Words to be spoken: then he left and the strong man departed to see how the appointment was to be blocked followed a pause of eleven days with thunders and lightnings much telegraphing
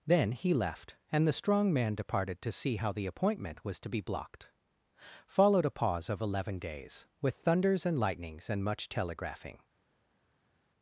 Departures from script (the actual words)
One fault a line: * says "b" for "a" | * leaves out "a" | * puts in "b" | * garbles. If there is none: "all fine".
* puts in "and"